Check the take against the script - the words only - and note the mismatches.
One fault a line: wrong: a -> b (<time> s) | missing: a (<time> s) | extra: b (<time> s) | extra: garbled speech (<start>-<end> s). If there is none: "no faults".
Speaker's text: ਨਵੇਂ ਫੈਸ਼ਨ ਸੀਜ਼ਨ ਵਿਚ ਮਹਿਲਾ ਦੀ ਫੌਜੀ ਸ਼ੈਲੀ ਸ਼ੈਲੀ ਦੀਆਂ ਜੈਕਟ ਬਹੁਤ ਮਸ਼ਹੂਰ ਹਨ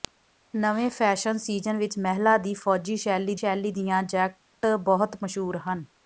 no faults